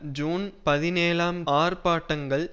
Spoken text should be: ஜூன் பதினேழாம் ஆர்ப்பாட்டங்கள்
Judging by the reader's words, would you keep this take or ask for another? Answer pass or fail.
pass